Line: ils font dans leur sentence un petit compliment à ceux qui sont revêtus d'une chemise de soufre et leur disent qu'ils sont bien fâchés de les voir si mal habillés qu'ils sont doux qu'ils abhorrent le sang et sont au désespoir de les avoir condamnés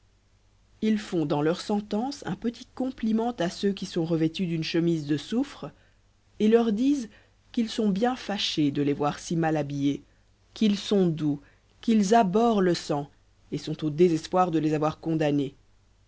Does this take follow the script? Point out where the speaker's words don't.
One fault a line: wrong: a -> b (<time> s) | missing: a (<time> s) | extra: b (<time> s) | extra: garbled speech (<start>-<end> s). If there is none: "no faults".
no faults